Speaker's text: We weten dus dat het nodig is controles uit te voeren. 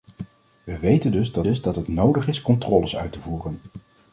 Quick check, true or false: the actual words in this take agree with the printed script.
false